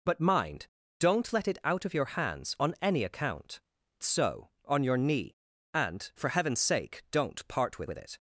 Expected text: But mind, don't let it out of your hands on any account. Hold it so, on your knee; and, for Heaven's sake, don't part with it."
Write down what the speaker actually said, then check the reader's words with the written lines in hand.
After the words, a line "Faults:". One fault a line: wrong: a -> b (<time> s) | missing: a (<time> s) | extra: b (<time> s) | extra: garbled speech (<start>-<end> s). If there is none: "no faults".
But mind, don't let it out of your hands on any account. So, on your knee; and, for Heaven's sake, don't part with with it."
Faults:
missing: Hold it (3.6 s)
extra: with (7.9 s)